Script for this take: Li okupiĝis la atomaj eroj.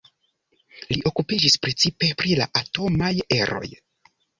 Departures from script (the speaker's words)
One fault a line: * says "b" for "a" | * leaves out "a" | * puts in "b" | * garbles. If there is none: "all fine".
* puts in "precipe pri"